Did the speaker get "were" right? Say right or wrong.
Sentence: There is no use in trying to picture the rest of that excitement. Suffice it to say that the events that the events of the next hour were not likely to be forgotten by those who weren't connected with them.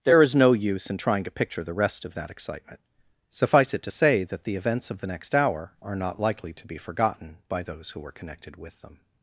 wrong